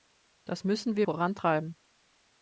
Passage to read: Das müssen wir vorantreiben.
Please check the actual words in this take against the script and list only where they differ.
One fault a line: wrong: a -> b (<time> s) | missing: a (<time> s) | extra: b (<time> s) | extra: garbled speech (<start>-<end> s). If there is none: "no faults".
no faults